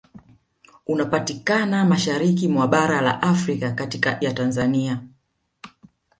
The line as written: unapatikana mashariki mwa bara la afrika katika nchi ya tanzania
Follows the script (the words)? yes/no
no